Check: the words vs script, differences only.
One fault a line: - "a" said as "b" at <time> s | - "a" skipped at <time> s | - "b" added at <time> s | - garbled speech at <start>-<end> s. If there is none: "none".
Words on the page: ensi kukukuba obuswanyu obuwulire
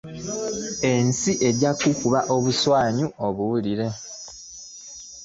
- "ejja" added at 1.5 s